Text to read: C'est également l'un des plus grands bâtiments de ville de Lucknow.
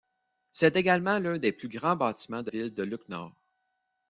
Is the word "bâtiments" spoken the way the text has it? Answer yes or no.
yes